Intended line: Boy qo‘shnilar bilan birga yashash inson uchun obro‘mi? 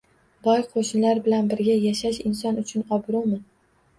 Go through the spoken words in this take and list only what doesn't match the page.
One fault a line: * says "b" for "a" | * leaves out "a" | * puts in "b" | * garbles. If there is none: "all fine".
all fine